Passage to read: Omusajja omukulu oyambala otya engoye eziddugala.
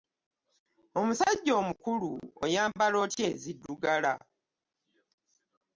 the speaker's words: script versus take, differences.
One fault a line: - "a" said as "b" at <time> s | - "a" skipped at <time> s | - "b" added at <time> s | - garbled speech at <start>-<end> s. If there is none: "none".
- "engoye" skipped at 3.2 s